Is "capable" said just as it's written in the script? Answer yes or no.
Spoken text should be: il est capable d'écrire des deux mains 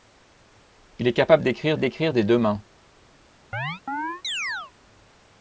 yes